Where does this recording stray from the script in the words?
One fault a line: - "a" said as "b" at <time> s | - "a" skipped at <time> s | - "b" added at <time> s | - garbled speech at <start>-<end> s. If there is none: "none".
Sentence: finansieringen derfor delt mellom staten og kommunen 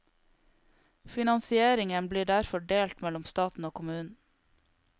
- "blir" added at 2.1 s